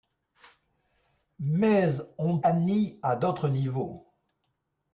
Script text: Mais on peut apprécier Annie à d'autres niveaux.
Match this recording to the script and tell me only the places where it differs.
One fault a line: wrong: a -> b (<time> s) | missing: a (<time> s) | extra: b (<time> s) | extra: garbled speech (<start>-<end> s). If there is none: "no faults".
missing: peut apprécier (2.4 s)